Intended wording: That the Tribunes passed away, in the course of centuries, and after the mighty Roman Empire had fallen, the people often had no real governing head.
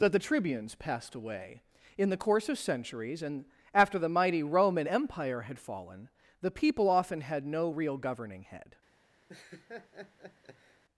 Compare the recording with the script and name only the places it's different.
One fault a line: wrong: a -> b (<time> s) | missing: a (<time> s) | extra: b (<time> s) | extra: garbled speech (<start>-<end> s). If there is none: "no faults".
no faults